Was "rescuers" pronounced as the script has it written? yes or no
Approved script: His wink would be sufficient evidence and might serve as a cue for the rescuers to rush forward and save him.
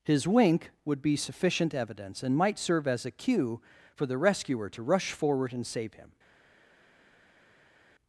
no